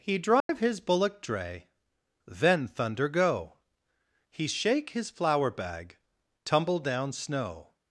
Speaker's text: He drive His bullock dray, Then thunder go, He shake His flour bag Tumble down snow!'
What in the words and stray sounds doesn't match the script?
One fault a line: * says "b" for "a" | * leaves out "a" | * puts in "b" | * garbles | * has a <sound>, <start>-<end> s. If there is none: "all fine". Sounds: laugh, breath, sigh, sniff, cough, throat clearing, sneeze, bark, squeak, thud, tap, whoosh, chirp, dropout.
* has a dropout, 0.4-0.5 s